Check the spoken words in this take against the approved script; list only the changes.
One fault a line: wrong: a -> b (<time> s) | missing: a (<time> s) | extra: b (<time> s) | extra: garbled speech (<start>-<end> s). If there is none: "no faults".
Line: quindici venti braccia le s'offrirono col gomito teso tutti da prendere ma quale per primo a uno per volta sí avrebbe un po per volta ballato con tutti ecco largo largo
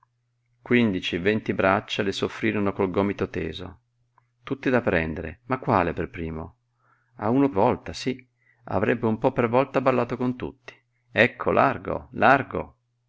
missing: per (7.5 s)